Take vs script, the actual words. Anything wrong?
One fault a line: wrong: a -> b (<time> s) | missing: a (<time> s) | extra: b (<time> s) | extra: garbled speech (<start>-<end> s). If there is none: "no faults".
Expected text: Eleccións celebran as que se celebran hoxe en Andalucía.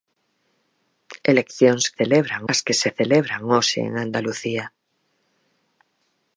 no faults